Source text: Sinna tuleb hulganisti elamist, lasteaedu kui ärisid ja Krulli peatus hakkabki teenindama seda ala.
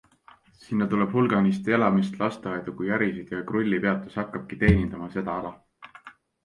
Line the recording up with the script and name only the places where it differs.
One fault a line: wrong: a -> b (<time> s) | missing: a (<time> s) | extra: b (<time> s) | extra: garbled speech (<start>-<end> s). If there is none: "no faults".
no faults